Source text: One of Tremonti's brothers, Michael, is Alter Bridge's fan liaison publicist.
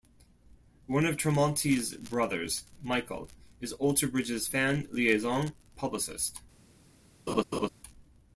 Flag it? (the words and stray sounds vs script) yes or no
yes